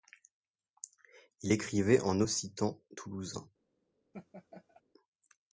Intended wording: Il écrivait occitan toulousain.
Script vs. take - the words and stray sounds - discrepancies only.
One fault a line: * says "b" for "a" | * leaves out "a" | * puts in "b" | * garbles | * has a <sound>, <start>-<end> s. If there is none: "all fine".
* puts in "en"
* has a laugh, 4.1-4.8 s